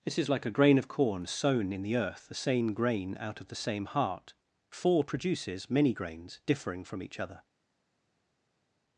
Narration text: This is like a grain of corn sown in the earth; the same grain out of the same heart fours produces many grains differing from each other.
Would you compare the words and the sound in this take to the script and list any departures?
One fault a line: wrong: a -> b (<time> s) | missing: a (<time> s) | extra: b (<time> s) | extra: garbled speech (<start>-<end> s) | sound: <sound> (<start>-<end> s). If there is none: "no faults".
wrong: fours -> four (4.7 s)